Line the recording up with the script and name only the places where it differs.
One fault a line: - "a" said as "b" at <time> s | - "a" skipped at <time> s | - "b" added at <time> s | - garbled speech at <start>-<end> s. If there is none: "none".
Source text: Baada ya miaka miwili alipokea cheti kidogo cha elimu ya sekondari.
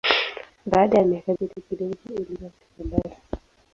- "miwili alipokea" skipped at 1.3 s